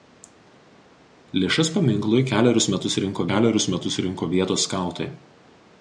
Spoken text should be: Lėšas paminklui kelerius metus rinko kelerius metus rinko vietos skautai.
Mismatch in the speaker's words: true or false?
false